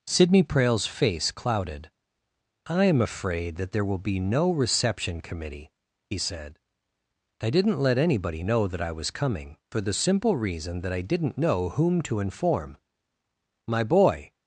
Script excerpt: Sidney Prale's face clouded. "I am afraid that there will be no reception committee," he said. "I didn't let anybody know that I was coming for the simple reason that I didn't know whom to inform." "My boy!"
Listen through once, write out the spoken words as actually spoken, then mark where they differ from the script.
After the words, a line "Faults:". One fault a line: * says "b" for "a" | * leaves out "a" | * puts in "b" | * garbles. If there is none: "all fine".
Sidney Prale's face clouded. "I am afraid that there will be no reception committee," he said. "I didn't let anybody know that I was coming for the simple reason that I didn't know whom to inform." "My boy!"
Faults:
all fine